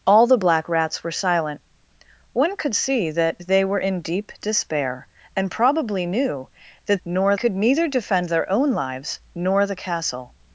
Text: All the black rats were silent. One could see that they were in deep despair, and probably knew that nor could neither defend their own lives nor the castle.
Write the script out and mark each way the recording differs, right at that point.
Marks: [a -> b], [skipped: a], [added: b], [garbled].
All the black rats were silent. One could see that they were in deep despair, and probably knew that nor could neither defend their own lives nor the castle.